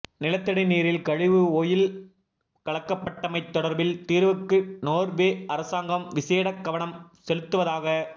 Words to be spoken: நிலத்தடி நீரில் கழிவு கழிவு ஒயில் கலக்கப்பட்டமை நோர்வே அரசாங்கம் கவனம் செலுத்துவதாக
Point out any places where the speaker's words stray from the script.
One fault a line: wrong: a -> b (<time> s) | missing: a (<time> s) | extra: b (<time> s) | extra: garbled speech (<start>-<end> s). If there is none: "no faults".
missing: கழிவு (1.4 s)
extra: தொடர்பில் தீர்வுக்கு (3.5 s)
extra: விசேட (6.1 s)